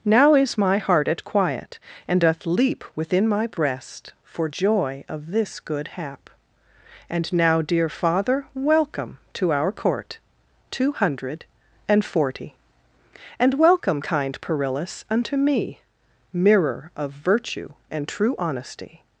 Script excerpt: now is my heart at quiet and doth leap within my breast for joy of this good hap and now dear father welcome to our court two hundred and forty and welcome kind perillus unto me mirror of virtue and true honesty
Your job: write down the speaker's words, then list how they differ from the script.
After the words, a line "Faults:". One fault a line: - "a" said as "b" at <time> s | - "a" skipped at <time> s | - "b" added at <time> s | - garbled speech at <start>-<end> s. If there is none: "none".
now is my heart at quiet and doth leap within my breast for joy of this good hap and now dear father welcome to our court two hundred and forty and welcome kind perillus unto me mirror of virtue and true honesty
Faults:
none